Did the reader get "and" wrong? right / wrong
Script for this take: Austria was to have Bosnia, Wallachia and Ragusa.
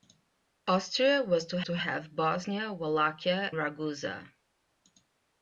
wrong